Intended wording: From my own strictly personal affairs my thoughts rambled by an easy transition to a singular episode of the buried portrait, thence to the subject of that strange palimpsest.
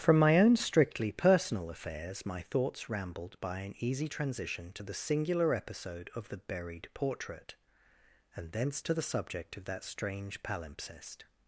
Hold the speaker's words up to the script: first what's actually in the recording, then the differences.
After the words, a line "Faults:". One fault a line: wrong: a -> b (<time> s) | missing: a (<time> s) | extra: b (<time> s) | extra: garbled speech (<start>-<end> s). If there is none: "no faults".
From my own strictly personal affairs my thoughts rambled by an easy transition to the singular episode of the buried portrait, and thence to the subject of that strange palimpsest.
Faults:
wrong: a -> the (4.8 s)
extra: and (8.3 s)